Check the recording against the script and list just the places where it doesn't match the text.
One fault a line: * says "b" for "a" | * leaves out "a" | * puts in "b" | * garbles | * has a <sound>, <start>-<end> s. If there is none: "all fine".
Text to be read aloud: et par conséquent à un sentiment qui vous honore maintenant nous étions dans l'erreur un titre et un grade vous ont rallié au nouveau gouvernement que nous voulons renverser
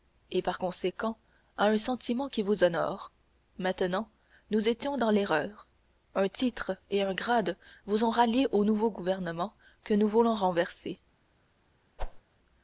* has a whoosh, 12.0-12.2 s